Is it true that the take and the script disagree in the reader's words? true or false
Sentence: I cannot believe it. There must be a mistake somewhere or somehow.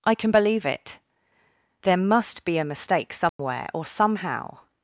true